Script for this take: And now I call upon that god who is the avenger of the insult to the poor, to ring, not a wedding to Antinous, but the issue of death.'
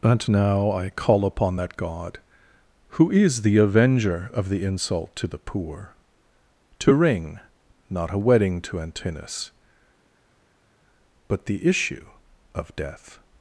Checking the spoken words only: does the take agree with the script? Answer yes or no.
yes